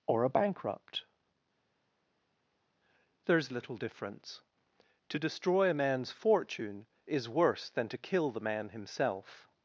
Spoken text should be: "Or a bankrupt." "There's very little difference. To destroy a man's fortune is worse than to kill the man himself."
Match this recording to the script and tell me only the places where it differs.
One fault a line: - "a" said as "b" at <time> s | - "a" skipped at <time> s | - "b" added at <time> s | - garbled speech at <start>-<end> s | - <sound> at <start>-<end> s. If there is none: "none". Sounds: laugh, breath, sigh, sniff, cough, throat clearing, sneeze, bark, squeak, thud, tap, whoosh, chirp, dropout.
- "very" skipped at 3.5 s